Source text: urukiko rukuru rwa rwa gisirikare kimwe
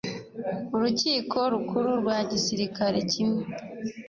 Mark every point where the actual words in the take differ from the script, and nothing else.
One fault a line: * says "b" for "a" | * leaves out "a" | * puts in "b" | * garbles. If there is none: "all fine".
* leaves out "rwa"